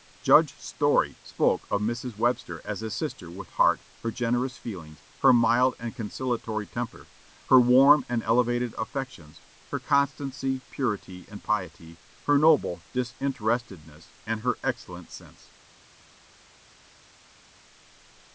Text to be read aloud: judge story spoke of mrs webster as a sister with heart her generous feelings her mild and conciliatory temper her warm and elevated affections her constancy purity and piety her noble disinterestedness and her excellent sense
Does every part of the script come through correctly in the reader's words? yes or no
yes